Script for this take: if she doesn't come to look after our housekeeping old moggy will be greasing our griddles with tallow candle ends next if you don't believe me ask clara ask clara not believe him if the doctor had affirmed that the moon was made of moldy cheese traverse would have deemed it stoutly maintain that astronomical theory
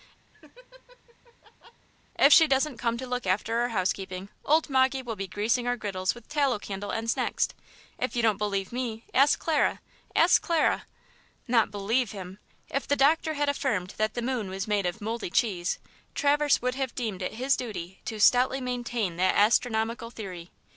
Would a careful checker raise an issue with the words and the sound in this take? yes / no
yes